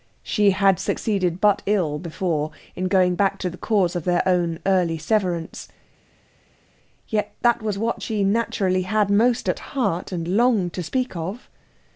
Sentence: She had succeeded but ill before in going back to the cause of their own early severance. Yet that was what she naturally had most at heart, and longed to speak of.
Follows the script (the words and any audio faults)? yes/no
yes